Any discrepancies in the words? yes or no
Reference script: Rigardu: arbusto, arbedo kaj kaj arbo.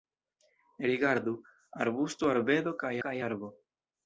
no